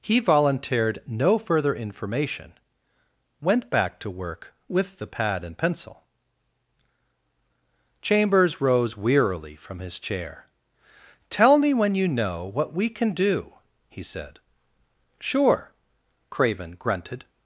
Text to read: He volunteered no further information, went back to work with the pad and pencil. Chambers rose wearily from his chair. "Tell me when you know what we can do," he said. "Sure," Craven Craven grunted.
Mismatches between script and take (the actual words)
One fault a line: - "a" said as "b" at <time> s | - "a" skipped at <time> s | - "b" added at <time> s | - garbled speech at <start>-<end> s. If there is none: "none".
- "Craven" skipped at 16.8 s